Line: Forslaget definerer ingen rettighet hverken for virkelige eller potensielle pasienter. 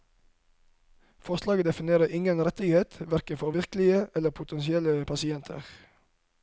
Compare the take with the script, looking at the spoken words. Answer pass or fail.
pass